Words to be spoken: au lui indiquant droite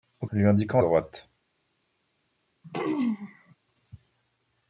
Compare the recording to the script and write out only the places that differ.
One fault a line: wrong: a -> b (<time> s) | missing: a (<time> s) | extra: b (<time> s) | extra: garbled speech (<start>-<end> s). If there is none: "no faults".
no faults